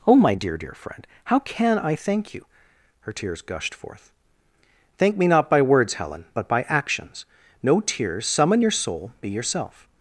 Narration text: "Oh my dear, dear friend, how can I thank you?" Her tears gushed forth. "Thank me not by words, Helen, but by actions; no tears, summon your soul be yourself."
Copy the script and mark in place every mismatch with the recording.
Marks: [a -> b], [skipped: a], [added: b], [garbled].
"Oh my dear, dear friend, how can I thank you?" Her tears gushed forth. "Thank me not by words, Helen, but by actions; no tears, summon your soul be yourself."